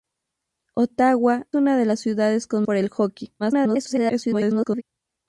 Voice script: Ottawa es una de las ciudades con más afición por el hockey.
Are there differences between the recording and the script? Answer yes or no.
yes